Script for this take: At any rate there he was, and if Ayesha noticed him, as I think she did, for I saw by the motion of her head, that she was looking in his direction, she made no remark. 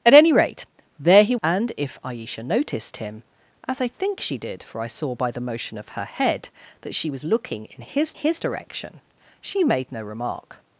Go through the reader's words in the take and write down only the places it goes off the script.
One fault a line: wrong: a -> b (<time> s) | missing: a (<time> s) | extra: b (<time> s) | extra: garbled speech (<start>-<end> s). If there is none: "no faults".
missing: was (1.4 s)
extra: his (8.1 s)